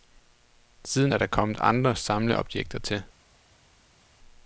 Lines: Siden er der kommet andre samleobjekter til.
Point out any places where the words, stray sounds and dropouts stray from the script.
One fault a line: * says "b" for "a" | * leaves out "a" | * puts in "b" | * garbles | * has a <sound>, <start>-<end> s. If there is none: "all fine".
all fine